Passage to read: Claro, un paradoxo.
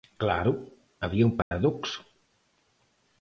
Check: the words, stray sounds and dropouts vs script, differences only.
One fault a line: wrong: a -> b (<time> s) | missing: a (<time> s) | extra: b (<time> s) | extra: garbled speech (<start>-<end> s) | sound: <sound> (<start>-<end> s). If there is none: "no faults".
extra: había (1.0 s)
sound: dropout (1.4-1.5 s)